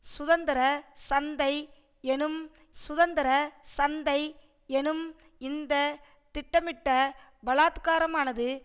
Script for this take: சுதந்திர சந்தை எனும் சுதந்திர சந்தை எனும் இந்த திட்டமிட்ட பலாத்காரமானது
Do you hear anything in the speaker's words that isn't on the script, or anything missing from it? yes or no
no